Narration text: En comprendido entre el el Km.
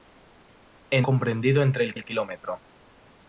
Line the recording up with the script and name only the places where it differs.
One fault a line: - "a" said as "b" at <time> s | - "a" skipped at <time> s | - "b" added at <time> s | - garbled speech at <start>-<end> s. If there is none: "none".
none